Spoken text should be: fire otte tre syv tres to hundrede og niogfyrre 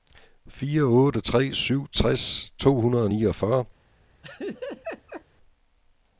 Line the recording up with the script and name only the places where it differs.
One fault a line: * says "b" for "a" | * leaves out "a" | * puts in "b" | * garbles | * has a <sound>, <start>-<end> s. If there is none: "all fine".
* has a laugh, 4.2-5.2 s